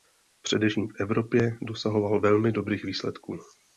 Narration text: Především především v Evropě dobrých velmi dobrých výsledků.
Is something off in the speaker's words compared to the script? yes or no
yes